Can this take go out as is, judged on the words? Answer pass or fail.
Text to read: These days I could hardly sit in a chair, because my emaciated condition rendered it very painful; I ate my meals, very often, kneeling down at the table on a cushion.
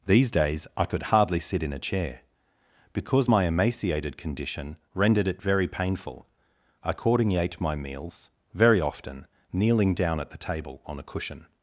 fail